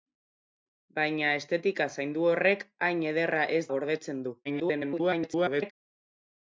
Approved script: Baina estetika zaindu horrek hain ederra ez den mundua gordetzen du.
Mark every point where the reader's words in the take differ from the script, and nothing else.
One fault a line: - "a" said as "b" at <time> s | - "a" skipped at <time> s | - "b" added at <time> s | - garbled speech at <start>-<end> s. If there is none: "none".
- "den mundua" skipped at 3.6 s
- garbled speech at 4.4-5.7 s